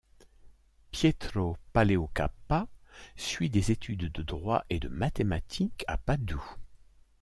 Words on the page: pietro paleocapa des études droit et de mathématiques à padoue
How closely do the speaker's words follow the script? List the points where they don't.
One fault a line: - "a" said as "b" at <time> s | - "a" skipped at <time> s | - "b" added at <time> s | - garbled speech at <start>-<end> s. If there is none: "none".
- "suit" added at 3.1 s
- "de" added at 4.1 s